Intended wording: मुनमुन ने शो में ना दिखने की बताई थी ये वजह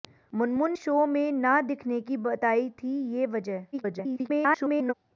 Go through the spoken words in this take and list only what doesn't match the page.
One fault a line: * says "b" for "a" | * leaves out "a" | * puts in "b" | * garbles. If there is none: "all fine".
* leaves out "ने"
* garbles